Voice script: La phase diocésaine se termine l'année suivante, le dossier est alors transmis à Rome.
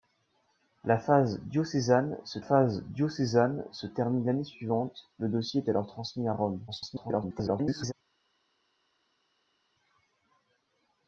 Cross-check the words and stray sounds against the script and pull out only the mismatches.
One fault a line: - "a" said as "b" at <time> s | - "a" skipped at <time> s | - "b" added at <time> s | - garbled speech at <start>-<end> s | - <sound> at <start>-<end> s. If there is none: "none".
- "phase diocésaine se" added at 2.4 s
- garbled speech at 6.7-7.9 s